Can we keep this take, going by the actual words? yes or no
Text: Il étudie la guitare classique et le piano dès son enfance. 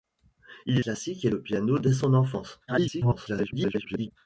no